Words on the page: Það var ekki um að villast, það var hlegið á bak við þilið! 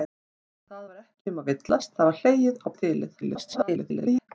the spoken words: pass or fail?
fail